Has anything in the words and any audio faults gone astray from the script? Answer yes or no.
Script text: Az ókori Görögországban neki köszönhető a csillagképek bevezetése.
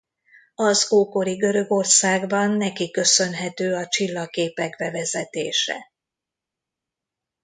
no